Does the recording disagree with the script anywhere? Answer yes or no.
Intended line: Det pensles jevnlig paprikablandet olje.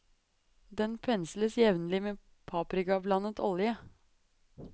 yes